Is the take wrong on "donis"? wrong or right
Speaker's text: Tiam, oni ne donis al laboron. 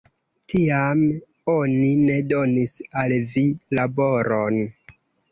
right